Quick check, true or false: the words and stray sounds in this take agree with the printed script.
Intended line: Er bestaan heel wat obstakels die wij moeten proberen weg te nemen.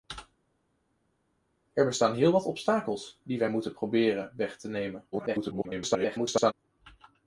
false